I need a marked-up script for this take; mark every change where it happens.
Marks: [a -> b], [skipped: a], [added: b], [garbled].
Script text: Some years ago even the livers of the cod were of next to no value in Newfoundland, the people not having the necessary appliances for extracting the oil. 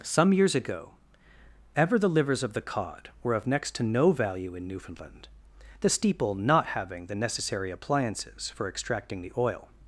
Some years ago [even -> ever] the livers of the cod were of next to no value in Newfoundland, the [people -> steeple] not having the necessary appliances for extracting the oil.